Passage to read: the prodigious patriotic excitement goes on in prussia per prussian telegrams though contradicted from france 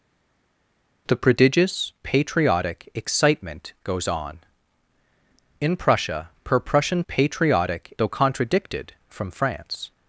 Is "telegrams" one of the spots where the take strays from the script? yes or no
yes